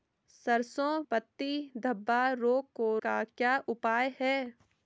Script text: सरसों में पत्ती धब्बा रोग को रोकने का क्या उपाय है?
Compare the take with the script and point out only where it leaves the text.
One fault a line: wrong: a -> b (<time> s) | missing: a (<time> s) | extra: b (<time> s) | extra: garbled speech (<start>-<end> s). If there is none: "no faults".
missing: में (1.0 s)
missing: रोकने (3.0 s)